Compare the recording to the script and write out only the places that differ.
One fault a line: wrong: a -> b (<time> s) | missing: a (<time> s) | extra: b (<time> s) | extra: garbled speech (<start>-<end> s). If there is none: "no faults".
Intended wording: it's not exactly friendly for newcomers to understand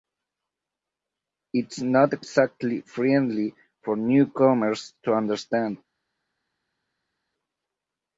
no faults